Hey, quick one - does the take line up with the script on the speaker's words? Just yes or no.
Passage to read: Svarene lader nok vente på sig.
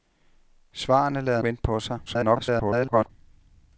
no